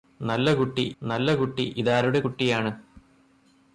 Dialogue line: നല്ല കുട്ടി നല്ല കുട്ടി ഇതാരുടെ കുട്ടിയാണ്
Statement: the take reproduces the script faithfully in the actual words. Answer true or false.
true